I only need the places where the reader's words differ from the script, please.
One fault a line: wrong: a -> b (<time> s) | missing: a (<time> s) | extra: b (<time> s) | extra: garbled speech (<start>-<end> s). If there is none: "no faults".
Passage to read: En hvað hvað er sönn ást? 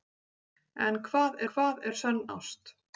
no faults